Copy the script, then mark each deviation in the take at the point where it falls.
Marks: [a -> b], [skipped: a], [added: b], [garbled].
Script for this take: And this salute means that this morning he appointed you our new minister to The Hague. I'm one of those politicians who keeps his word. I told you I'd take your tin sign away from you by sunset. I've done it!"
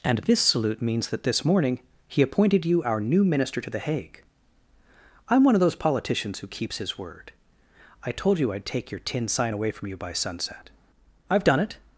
And this salute means that this morning he appointed you our new minister to The Hague. I'm one of those politicians who keeps his word. I told you I'd take your tin sign away from you by sunset. I've done it!"